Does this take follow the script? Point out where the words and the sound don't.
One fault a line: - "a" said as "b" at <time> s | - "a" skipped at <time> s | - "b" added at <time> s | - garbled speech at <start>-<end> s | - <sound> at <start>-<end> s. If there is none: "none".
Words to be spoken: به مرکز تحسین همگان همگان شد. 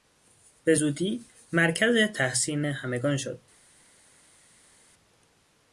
- "زودی" added at 0.7 s
- "همگان" skipped at 3.2 s